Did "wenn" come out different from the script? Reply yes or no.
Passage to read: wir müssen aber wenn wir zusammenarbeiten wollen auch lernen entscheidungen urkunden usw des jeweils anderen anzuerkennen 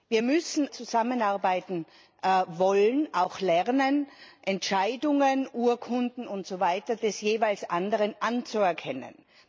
yes